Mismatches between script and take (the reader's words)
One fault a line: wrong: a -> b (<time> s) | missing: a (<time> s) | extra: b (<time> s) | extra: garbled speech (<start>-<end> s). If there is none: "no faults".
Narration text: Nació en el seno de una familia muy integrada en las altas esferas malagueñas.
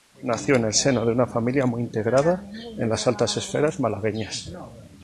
no faults